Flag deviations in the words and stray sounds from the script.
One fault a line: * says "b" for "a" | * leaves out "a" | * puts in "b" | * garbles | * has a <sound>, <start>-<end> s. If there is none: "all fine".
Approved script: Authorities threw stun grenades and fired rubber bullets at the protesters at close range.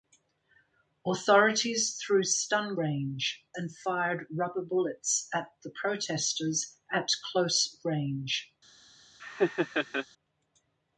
* says "range" for "grenades"
* has a laugh, 9.2-10.1 s